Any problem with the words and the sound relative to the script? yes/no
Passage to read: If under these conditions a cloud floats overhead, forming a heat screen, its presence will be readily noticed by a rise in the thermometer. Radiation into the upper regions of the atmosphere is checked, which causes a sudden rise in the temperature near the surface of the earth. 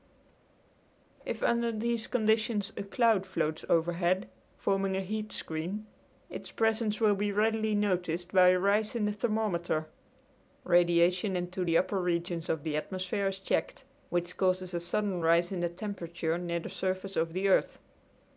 no